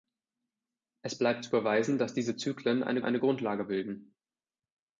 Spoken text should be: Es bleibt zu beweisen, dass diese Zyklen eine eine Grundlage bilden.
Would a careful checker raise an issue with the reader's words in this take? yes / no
no